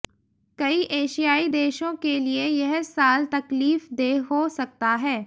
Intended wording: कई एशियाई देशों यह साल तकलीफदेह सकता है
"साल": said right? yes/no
yes